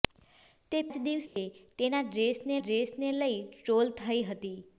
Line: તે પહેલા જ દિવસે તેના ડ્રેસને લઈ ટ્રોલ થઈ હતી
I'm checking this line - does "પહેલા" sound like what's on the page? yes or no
no